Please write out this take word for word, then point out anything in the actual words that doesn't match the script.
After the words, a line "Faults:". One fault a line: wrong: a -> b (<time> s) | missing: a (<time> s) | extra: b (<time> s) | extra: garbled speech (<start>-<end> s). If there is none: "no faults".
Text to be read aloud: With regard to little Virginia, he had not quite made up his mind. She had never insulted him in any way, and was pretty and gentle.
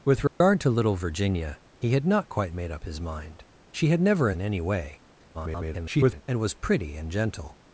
With regard to little Virginia, he had not quite made up his mind. She had never in any way, [garbled] and was pretty and gentle.
Faults:
missing: insulted him (4.3 s)
extra: garbled speech (5.3-6.2 s)